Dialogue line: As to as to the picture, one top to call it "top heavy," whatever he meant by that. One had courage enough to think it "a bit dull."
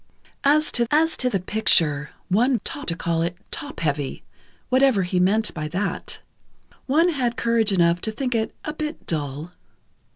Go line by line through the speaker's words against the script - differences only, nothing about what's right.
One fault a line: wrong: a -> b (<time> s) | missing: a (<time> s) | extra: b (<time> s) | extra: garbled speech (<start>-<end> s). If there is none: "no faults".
no faults